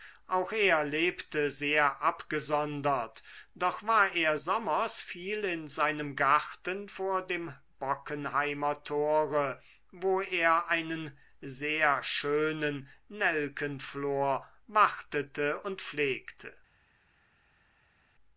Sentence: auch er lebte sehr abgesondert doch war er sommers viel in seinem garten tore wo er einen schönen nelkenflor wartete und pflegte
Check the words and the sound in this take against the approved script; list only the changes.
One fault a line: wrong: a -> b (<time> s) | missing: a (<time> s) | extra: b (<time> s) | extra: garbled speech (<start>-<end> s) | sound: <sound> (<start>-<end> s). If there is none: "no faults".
extra: vor dem bockenheimer (6.9 s)
extra: sehr (11.4 s)